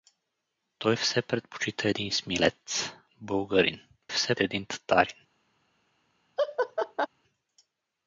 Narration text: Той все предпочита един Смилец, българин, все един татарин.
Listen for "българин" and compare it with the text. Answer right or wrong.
right